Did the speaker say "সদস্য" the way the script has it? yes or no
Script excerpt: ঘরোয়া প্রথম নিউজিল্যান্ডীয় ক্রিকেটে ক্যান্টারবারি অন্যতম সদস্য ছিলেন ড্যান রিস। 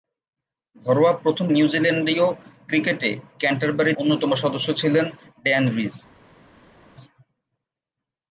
yes